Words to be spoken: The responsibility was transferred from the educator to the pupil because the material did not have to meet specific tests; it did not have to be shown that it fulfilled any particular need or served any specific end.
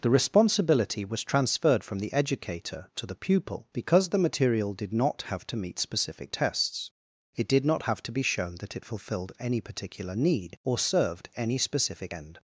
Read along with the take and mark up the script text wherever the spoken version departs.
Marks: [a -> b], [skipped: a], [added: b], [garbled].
The responsibility was transferred from the educator to the pupil because the material did not have to meet specific tests; it did not have to be shown that it fulfilled any particular need or served any specific end.